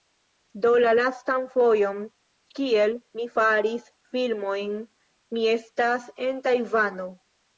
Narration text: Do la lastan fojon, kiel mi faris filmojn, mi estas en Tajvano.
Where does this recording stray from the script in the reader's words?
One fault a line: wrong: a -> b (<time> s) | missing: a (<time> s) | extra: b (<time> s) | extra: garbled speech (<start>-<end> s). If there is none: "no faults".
no faults